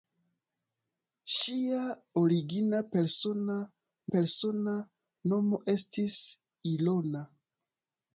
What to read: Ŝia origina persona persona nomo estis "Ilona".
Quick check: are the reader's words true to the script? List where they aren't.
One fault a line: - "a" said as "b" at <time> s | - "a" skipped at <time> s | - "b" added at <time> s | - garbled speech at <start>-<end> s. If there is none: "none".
none